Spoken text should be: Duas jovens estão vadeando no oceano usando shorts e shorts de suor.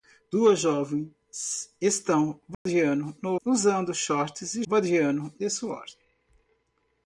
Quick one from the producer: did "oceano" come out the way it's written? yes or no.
no